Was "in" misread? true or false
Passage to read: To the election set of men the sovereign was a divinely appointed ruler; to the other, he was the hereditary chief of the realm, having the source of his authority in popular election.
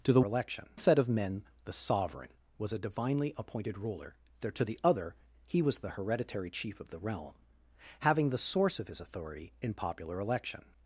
false